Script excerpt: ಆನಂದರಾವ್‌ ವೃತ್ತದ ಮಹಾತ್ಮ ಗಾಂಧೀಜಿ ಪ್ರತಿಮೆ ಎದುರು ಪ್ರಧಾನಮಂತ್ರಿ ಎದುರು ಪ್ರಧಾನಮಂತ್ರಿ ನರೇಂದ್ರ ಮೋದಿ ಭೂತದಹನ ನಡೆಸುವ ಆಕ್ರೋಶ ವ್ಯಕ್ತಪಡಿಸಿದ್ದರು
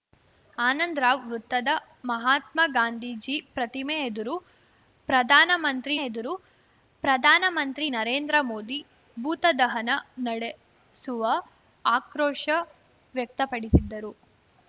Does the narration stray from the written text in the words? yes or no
no